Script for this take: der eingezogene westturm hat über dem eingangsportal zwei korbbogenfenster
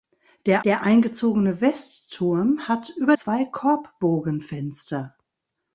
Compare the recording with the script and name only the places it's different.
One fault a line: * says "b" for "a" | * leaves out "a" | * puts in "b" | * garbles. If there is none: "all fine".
* puts in "der"
* leaves out "dem eingangsportal"